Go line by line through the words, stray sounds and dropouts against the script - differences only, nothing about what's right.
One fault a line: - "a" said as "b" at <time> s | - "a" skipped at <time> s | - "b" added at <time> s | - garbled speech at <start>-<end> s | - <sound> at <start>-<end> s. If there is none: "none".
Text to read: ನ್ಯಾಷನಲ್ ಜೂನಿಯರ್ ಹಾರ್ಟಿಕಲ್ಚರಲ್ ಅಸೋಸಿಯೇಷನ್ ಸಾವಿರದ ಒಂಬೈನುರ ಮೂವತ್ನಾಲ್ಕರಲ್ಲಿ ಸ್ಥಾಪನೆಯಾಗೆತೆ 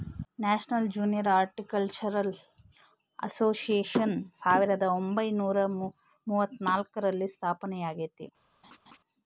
- laugh at 8.6-9.0 s